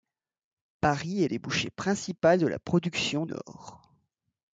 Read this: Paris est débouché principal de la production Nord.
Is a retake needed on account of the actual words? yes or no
no